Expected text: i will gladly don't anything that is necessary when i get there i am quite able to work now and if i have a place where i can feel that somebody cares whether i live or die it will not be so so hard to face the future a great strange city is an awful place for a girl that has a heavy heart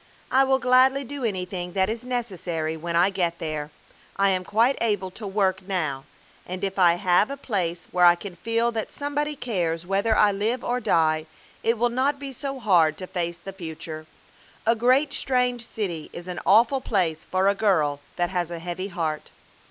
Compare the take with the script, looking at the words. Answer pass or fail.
fail